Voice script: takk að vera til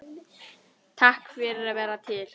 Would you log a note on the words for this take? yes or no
yes